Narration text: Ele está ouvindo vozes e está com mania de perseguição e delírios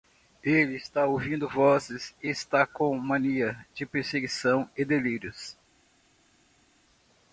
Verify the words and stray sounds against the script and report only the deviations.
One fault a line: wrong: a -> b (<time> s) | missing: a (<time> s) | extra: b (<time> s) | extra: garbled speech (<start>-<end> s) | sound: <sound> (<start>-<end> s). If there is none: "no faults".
no faults